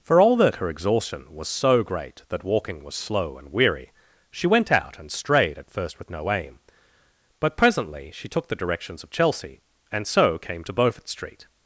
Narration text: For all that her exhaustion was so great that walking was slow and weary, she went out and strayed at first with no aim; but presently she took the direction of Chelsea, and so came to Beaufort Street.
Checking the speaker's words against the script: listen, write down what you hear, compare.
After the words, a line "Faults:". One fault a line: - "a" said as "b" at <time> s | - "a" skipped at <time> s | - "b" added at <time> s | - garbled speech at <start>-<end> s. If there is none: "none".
For all that her exhaustion was so great that walking was slow and weary, she went out and strayed at first with no aim; but presently she took the directions of Chelsea, and so came to Beaufort Street.
Faults:
- "direction" said as "directions" at 8.6 s